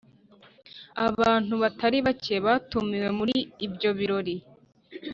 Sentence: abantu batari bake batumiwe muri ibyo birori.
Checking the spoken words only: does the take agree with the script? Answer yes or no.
yes